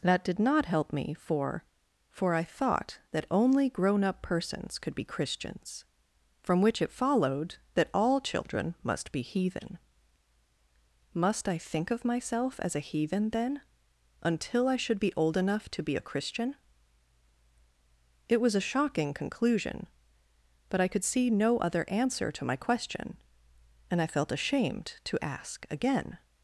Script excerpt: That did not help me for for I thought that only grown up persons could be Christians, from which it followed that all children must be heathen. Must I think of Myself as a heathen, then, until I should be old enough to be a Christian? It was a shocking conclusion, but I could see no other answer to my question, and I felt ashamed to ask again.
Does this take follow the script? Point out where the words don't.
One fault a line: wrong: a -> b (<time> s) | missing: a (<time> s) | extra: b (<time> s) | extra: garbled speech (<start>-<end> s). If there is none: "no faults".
no faults